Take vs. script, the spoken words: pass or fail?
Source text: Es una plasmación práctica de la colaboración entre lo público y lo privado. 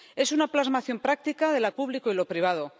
fail